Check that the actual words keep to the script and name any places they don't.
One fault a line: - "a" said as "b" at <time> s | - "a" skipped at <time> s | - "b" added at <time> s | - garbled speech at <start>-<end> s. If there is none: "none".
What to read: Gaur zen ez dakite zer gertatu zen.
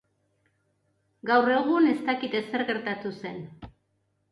- "zen" said as "egun" at 1.6 s